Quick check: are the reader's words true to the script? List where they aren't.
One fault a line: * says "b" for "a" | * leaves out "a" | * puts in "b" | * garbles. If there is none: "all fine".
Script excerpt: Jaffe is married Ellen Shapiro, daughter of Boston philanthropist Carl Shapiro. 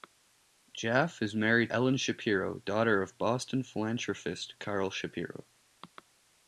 all fine